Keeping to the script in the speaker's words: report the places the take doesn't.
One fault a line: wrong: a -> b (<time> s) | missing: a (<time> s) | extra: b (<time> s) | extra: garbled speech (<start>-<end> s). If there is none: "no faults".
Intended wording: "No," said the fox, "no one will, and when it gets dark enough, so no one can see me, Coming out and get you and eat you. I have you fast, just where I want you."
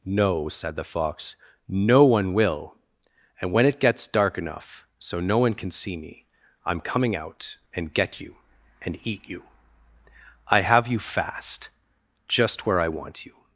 extra: I'm (6.7 s)